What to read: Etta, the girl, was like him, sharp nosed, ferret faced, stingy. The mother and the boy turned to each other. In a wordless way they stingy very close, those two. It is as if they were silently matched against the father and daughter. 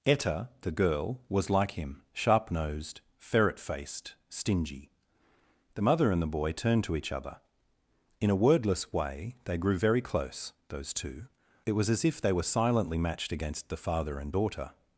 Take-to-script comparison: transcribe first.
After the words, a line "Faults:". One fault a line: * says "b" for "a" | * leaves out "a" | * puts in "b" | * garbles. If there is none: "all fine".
Etta, the girl, was like him, sharp nosed, ferret faced, stingy. The mother and the boy turned to each other. In a wordless way they grew very close, those two. It was as if they were silently matched against the father and daughter.
Faults:
* says "grew" for "stingy"
* says "was" for "is"